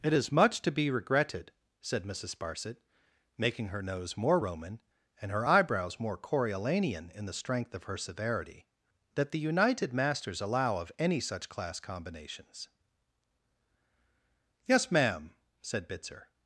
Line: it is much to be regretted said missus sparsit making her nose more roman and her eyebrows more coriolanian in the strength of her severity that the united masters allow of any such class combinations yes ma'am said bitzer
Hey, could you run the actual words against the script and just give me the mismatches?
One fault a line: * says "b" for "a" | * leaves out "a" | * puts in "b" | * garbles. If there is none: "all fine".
all fine